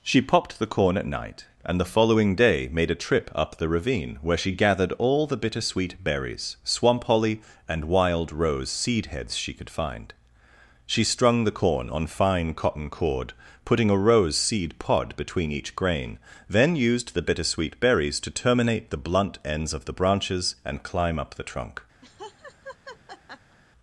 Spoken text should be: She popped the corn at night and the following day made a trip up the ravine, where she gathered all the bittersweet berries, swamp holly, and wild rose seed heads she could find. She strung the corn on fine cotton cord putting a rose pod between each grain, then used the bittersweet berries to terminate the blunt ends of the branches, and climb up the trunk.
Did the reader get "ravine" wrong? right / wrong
right